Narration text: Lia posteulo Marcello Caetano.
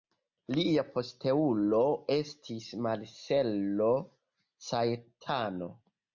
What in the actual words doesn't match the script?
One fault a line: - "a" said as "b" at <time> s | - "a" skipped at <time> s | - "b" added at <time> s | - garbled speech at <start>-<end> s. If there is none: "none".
- "estis" added at 2.1 s